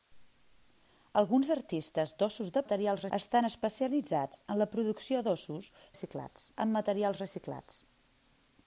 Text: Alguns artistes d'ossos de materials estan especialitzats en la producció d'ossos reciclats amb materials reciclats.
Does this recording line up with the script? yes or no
yes